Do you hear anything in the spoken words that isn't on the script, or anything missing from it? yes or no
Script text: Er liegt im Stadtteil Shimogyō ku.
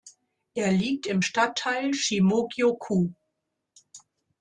no